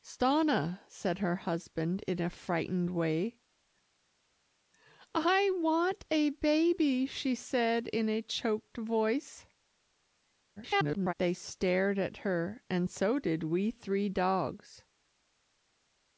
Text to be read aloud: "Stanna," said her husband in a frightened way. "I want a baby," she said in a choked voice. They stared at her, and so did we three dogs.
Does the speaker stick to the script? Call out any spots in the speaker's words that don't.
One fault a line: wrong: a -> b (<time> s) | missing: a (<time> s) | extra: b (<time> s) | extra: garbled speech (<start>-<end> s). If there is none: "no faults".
extra: garbled speech (10.6-11.1 s)